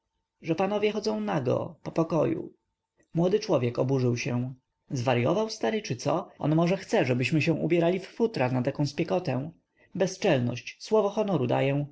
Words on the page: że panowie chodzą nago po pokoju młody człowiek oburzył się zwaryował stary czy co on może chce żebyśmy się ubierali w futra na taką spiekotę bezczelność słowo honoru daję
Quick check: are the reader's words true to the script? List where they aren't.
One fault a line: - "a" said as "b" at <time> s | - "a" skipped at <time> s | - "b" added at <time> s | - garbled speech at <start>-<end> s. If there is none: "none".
none